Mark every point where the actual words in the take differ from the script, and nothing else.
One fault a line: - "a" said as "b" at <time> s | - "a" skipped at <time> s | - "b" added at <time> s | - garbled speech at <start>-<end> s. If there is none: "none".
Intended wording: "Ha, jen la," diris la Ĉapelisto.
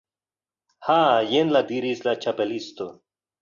none